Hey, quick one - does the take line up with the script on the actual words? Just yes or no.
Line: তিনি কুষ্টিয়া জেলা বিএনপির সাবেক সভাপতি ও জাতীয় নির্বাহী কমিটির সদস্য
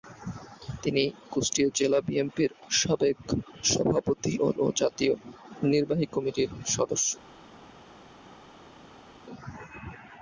no